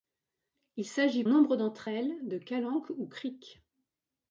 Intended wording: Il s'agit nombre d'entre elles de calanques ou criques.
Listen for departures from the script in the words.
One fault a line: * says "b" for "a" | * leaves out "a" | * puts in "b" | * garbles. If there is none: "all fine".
all fine